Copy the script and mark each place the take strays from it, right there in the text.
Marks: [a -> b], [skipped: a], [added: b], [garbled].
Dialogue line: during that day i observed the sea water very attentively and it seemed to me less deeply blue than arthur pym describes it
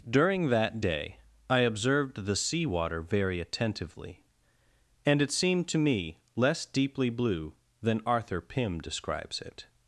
during that day i observed the sea water very attentively and it seemed to me less deeply blue than arthur pym describes it